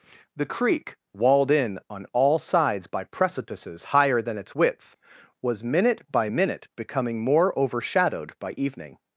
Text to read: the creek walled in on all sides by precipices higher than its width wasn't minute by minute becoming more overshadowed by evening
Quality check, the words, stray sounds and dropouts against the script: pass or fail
fail